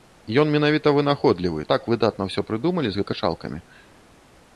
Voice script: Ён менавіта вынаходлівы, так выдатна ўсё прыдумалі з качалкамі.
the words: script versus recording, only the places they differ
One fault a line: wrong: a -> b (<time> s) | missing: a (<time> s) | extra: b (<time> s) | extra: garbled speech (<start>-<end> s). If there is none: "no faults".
no faults